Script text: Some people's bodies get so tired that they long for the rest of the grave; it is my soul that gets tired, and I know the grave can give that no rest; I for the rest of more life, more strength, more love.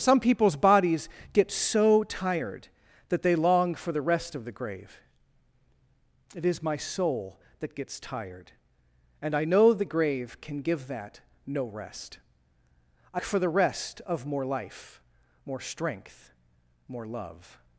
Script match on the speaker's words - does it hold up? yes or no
yes